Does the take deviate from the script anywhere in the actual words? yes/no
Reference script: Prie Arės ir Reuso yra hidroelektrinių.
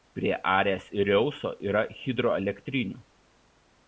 no